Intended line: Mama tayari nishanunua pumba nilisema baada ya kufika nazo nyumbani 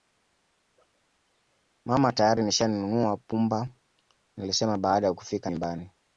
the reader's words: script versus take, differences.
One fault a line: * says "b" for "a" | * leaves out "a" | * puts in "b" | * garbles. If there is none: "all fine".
* leaves out "nazo"